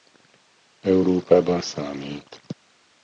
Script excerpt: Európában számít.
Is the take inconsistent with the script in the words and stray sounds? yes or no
no